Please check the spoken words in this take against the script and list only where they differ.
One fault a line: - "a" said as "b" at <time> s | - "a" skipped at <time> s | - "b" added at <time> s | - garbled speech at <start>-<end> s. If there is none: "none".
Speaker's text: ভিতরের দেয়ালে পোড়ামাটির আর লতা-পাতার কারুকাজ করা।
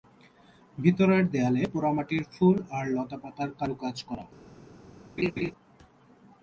- "ফুল" added at 2.3 s